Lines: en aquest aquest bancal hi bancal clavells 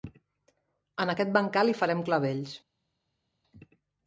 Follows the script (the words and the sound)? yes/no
no